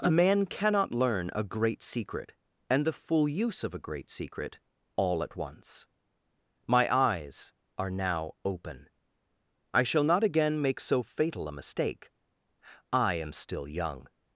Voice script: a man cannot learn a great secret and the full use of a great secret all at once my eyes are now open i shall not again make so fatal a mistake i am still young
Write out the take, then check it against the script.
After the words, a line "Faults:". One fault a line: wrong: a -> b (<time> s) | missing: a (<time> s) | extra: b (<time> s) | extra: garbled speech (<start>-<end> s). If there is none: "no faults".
a man cannot learn a great secret and the full use of a great secret all at once my eyes are now open i shall not again make so fatal a mistake i am still young
Faults:
no faults